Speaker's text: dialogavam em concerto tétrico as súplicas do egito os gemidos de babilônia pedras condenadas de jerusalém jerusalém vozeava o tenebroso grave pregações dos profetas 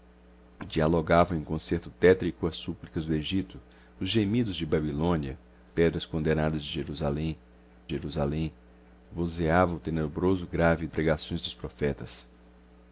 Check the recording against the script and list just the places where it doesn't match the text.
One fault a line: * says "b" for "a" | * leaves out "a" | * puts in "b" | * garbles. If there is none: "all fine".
all fine